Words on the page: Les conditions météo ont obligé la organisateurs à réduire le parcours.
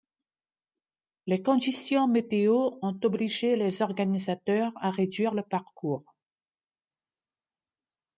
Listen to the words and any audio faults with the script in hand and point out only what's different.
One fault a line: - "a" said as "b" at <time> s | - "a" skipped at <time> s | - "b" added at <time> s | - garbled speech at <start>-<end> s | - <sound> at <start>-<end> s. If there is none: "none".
- "la" said as "les" at 3.5 s